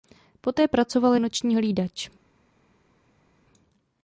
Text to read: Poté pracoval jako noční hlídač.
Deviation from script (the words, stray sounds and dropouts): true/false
true